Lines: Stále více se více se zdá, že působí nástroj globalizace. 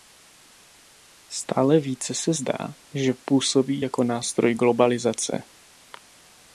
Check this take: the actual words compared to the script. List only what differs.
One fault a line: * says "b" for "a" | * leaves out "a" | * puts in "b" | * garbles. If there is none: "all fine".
* leaves out "více se"
* puts in "jako"